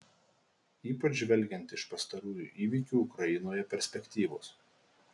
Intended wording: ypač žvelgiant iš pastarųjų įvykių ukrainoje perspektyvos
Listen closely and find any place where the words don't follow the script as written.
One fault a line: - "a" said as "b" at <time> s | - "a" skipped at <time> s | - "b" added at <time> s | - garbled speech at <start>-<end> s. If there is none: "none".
none